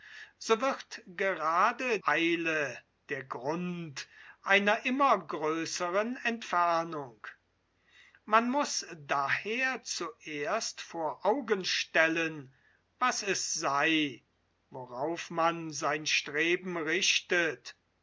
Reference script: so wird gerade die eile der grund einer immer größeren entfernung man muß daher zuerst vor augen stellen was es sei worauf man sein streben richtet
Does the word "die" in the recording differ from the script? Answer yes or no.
yes